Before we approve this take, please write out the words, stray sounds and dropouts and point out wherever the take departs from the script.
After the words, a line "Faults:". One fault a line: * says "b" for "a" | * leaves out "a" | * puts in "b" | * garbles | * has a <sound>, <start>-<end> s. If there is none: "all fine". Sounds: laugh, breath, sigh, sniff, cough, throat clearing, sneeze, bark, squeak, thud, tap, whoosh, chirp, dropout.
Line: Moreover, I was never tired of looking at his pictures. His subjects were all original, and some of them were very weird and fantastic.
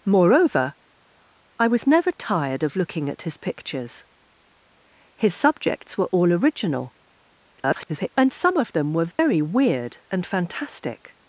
Moreover, I was never tired of looking at his pictures. His subjects were all original, [garbled] and some of them were very weird and fantastic.
Faults:
* garbles
* has a dropout, 9.1-9.2 s